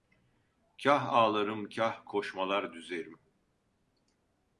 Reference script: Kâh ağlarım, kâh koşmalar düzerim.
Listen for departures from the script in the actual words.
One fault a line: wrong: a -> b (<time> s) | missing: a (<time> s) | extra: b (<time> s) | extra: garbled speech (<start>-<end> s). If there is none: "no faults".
no faults